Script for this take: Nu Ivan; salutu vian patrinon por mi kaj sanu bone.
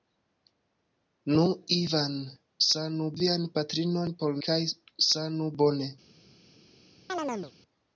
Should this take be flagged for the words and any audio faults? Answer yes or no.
yes